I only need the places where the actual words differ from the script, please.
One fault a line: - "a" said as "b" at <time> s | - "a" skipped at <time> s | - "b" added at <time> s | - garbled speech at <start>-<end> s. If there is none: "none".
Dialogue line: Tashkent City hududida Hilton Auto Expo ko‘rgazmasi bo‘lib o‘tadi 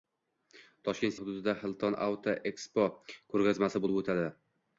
- "City" skipped at 1.1 s